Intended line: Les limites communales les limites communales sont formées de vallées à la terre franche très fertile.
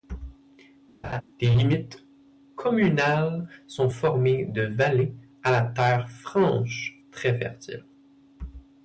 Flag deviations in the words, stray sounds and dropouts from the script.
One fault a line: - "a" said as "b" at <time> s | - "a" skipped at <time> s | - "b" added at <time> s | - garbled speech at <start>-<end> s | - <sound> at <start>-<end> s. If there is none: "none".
- laugh at 1.0-1.2 s
- "les limites communales" skipped at 3.5 s